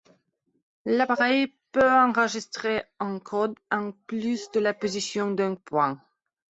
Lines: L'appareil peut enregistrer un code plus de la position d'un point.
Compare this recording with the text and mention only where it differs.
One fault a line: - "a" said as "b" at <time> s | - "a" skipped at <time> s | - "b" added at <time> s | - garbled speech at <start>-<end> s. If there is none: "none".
- "en" added at 3.7 s